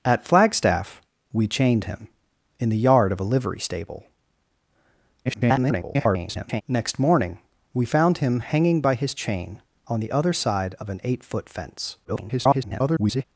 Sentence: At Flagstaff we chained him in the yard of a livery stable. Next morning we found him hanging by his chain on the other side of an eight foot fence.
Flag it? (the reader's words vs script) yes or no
yes